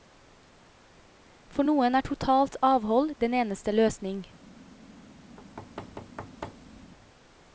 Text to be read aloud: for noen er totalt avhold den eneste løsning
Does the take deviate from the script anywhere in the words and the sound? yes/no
yes